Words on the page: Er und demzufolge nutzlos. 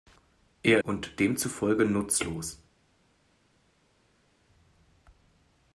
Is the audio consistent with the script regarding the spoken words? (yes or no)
yes